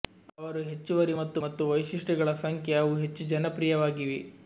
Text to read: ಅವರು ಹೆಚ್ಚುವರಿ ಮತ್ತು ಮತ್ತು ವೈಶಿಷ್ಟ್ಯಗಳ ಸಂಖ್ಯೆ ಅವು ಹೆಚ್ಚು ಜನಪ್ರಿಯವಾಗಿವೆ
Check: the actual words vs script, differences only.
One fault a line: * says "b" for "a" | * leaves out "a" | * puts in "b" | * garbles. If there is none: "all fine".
all fine